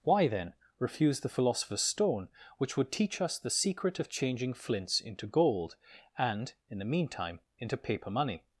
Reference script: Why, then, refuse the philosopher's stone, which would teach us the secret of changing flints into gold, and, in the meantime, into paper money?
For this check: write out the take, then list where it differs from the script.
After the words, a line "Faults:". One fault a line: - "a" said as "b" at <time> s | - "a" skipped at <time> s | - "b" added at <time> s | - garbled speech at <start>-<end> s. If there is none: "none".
Why, then, refuse the philosopher's stone, which would teach us the secret of changing flints into gold, and, in the meantime, into paper money?
Faults:
none